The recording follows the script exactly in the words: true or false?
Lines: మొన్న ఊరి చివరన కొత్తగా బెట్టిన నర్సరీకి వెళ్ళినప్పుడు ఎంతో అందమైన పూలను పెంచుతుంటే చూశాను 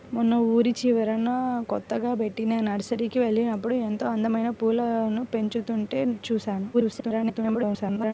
false